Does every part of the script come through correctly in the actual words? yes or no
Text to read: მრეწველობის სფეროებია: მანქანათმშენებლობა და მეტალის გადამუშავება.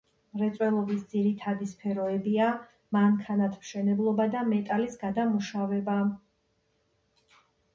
no